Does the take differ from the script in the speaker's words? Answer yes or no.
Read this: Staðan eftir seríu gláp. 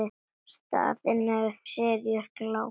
no